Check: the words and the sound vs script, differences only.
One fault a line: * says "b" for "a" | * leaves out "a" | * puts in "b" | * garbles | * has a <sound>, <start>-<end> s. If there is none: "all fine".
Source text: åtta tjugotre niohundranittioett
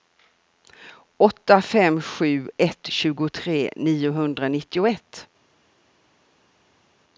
* puts in "fem sju ett"